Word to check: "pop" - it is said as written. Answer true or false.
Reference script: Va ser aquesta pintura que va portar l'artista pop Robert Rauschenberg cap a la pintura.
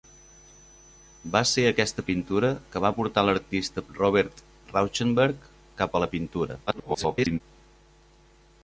false